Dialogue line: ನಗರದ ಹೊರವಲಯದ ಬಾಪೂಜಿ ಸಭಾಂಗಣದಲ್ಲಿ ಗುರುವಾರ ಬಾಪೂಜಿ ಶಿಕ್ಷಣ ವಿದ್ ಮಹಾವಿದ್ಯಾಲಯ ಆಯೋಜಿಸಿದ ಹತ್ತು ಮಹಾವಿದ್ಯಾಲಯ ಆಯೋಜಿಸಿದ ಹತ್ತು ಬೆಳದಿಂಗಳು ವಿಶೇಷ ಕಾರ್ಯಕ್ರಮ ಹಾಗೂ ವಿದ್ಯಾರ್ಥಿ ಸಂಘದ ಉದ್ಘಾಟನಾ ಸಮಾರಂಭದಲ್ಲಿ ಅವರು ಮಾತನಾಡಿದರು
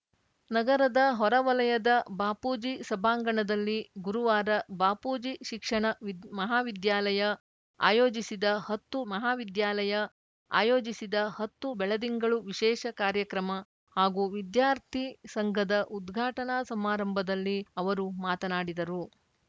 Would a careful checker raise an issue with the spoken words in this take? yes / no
no